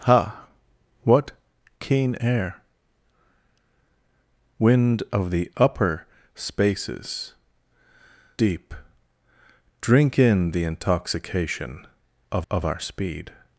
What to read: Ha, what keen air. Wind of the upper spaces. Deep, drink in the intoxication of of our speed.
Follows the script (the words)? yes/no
yes